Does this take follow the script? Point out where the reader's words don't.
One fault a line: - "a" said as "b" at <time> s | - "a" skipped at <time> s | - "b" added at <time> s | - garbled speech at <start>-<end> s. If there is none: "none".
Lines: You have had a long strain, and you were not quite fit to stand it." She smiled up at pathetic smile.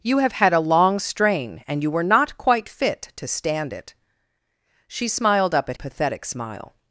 none